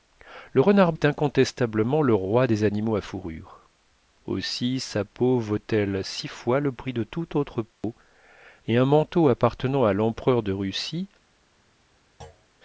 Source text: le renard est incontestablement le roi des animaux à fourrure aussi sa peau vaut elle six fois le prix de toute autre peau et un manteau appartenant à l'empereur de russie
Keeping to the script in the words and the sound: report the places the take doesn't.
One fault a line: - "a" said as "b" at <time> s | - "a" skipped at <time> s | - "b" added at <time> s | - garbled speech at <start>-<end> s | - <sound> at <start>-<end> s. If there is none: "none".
- dropout at 7.7-7.8 s
- thud at 12.2-12.5 s